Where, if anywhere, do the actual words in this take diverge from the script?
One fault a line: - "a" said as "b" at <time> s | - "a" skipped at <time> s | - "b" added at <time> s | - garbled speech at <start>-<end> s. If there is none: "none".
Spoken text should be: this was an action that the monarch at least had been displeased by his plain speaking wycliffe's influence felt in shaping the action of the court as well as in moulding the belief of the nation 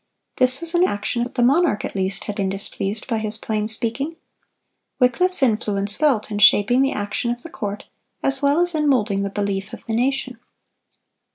none